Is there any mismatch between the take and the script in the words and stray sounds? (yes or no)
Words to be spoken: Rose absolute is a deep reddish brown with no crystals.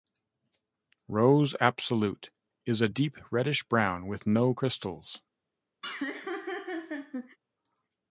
yes